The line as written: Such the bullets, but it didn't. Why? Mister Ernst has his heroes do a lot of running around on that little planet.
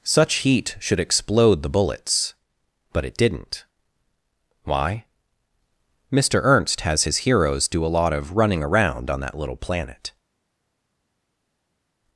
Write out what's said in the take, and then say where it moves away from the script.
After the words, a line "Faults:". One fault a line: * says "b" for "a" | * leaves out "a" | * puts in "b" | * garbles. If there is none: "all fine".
Such heat should explode the bullets, but it didn't. Why? Mister Ernst has his heroes do a lot of running around on that little planet.
Faults:
* puts in "heat should explode"